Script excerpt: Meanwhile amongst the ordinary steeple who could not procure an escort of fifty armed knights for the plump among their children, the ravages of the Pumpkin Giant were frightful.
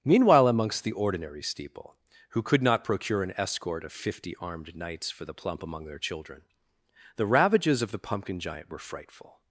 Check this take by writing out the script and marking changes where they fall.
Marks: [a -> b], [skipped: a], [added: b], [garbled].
Meanwhile amongst the ordinary steeple who could not procure an escort of fifty armed knights for the plump among their children, the ravages of the Pumpkin Giant were frightful.